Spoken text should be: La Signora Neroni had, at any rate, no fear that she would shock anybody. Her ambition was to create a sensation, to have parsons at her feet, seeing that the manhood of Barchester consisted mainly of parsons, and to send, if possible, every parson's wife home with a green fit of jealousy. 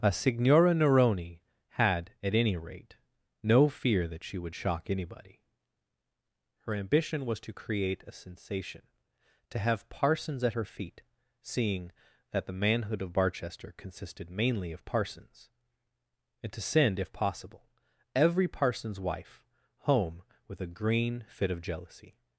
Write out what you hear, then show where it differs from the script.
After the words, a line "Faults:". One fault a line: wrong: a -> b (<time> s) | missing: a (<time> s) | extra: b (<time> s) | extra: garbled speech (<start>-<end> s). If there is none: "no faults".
A Signora Neroni had, at any rate, no fear that she would shock anybody. Her ambition was to create a sensation, to have parsons at her feet, seeing that the manhood of Barchester consisted mainly of parsons, and to send, if possible, every parson's wife home with a green fit of jealousy.
Faults:
wrong: La -> A (0.0 s)